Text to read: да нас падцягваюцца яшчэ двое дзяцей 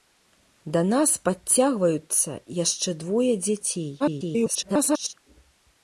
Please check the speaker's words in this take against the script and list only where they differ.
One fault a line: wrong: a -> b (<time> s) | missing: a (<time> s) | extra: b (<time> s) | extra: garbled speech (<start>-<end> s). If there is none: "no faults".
extra: garbled speech (4.0-5.1 s)